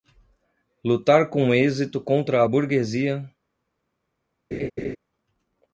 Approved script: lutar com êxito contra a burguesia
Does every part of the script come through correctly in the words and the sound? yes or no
no